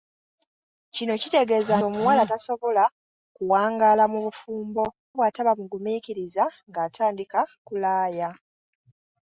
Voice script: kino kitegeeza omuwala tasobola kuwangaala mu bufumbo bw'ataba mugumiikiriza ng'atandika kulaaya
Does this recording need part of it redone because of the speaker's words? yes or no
no